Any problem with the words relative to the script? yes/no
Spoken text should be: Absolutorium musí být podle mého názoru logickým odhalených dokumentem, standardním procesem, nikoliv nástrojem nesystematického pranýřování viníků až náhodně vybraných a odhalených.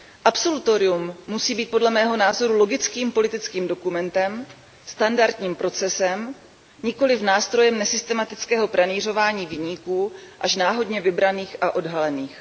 yes